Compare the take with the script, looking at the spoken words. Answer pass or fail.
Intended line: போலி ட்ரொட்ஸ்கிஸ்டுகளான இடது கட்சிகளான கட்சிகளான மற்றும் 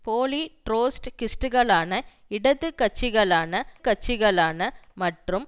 pass